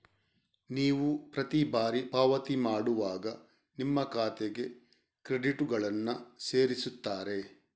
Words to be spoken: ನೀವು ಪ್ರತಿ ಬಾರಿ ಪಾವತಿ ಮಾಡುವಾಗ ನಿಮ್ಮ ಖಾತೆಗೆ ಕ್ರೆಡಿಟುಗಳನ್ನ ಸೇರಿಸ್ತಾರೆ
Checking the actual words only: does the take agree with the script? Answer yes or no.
yes